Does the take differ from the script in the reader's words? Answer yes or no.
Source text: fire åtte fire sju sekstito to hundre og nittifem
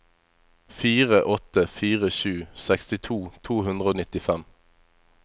no